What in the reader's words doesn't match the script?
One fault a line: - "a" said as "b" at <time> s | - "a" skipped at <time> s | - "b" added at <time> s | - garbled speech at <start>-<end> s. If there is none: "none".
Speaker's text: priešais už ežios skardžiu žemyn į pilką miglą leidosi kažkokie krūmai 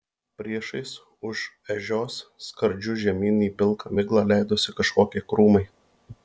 none